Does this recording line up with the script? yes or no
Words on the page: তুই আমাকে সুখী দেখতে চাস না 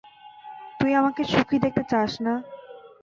yes